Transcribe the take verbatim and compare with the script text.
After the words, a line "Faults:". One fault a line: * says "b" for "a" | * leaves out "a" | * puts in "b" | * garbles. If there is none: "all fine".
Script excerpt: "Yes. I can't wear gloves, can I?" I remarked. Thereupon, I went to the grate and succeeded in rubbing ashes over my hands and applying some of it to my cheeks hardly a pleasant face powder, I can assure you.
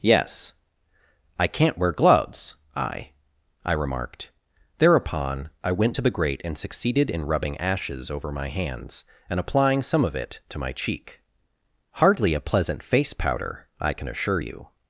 "Yes. I can't wear gloves, I?" I remarked. Thereupon, I went to the grate and succeeded in rubbing ashes over my hands and applying some of it to my cheek hardly a pleasant face powder, I can assure you.
Faults:
* leaves out "can"
* says "cheek" for "cheeks"